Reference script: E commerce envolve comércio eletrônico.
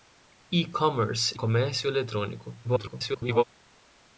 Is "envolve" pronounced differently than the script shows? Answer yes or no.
yes